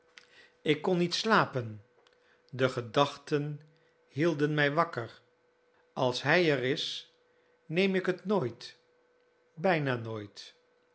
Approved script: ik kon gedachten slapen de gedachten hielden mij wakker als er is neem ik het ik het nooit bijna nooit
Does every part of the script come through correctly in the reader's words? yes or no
no